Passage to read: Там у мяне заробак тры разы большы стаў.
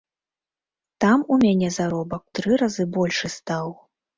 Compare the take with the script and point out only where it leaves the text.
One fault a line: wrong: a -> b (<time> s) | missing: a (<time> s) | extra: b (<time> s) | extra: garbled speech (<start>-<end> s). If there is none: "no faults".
no faults